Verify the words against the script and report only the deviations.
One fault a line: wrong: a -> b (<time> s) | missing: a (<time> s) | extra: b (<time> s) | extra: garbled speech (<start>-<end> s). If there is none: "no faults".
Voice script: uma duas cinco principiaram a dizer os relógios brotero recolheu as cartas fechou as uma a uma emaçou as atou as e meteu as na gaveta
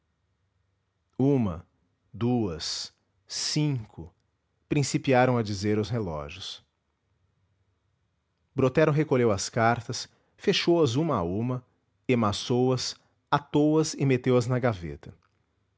no faults